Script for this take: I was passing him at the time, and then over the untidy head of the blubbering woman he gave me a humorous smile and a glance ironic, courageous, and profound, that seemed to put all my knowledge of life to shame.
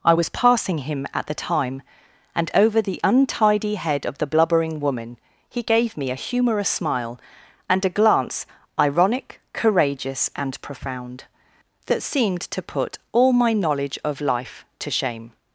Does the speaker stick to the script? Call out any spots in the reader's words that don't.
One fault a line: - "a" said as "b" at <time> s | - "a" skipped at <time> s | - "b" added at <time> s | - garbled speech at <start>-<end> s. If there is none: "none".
- "then" skipped at 2.5 s